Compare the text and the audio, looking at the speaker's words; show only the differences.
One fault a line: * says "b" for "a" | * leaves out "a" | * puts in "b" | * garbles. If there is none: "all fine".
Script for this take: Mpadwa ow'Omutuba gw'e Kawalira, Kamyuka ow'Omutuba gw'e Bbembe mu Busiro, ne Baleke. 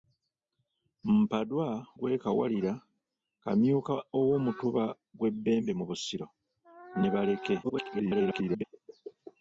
* leaves out "ow'Omutuba"
* garbles